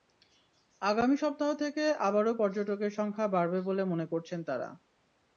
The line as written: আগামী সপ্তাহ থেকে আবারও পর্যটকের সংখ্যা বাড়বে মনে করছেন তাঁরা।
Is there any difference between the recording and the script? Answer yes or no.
yes